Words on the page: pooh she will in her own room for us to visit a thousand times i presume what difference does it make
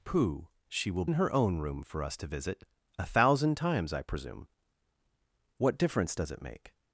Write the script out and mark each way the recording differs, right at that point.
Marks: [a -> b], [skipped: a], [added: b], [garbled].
pooh she will in her own room for us to visit a thousand times i presume what difference does it make